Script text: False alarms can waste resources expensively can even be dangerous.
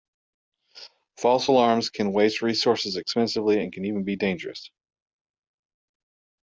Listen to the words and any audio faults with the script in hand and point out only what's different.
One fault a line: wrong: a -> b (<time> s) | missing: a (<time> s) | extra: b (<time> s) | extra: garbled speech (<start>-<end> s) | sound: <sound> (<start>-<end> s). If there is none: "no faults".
extra: and (3.6 s)